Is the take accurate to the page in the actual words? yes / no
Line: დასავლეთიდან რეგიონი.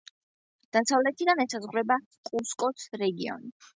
no